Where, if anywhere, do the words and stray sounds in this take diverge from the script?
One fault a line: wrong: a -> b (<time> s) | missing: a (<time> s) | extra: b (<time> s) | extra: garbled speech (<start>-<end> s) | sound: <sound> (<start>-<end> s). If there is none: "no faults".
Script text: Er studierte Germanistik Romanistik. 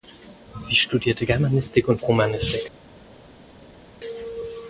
wrong: Er -> Sie (0.6 s)
extra: und (1.9 s)